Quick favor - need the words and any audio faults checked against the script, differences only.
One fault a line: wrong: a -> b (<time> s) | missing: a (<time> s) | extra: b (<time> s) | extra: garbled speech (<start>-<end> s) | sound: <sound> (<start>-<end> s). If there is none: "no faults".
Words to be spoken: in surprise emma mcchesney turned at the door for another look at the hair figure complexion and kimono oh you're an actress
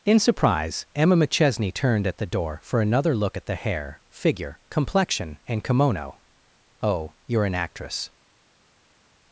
no faults